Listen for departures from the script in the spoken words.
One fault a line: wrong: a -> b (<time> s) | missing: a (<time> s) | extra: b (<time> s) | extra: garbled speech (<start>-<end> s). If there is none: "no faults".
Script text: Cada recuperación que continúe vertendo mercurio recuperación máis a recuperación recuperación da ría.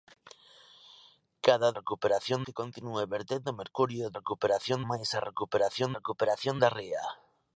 no faults